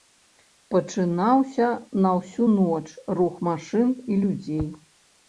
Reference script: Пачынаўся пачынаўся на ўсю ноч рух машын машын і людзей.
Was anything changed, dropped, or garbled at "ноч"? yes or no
no